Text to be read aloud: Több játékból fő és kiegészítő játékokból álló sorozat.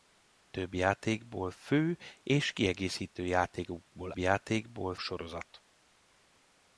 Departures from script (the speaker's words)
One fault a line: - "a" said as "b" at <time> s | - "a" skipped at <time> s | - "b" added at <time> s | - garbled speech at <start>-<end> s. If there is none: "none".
- "álló" said as "játékból" at 4.2 s